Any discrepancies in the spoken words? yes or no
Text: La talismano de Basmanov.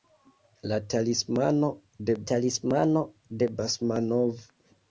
yes